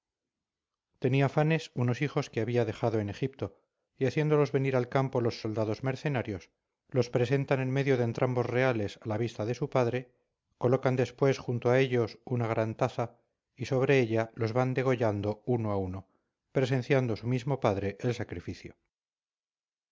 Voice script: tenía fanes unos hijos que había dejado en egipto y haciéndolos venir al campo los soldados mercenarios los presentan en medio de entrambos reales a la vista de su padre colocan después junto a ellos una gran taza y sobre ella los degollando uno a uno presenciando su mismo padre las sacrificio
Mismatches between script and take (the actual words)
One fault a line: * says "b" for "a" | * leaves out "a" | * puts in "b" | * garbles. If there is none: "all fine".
* puts in "van"
* says "el" for "las"